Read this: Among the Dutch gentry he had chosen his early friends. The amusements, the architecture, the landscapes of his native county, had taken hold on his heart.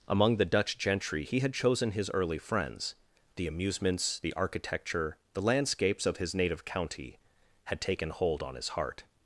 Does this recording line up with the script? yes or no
yes